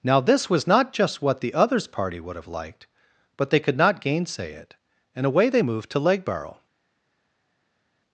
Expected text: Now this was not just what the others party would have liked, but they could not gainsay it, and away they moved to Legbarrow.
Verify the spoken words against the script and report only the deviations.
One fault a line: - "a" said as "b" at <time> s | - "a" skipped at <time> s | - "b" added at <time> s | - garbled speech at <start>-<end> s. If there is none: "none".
none